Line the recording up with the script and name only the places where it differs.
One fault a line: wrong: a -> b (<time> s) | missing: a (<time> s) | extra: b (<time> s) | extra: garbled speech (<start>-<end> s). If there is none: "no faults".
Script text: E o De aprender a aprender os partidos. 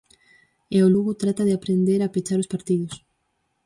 extra: Lugo trata (0.9 s)
wrong: aprender -> pechar (2.1 s)